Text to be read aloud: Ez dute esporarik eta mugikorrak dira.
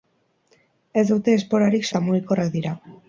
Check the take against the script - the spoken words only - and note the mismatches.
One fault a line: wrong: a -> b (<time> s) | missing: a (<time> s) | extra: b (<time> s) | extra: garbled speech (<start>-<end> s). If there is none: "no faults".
no faults